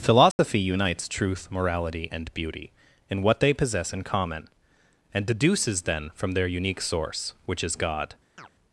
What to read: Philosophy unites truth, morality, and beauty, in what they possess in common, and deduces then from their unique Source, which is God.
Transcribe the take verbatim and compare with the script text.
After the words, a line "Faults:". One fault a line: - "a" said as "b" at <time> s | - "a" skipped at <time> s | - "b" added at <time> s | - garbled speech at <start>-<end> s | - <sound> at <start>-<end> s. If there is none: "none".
Philosophy unites truth, morality, and beauty, in what they possess in common, and deduces then from their unique Source, which is God.
Faults:
- dropout at 0.3-0.4 s
- chirp at 8.4-8.5 s